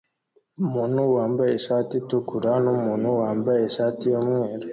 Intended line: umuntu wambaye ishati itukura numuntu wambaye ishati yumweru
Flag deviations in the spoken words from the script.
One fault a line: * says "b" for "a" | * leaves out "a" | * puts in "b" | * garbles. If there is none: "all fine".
all fine